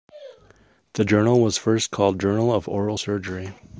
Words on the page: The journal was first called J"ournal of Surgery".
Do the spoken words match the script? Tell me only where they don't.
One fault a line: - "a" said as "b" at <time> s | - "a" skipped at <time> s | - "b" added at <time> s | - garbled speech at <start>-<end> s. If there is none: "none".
- "Oral" added at 2.7 s